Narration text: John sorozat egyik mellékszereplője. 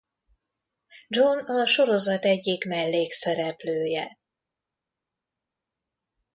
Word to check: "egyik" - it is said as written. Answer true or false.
true